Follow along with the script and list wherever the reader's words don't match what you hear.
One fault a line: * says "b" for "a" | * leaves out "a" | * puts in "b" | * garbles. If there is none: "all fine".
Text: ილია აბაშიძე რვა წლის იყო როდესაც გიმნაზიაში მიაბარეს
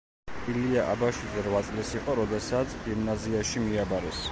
all fine